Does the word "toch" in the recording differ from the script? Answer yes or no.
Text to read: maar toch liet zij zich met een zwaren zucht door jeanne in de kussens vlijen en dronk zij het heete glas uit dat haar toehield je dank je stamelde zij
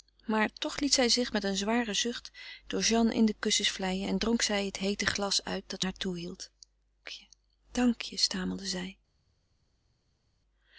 no